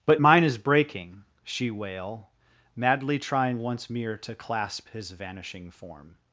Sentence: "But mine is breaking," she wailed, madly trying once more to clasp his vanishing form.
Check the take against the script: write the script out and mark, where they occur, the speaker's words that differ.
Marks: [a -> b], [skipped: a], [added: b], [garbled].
"But mine is breaking," she [wailed, -> wail] madly trying once [more -> mere] to clasp his vanishing form.